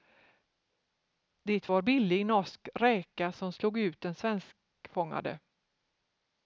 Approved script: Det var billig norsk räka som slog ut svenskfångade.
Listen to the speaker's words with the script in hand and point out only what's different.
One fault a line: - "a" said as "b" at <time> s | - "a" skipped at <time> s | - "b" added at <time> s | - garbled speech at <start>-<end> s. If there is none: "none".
- "den" added at 4.0 s